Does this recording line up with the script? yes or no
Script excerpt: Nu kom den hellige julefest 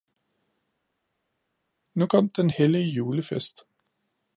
yes